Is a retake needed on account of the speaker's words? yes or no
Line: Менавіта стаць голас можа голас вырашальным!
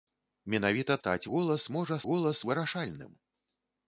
no